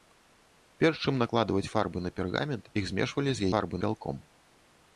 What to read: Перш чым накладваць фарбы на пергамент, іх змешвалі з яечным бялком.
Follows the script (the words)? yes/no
no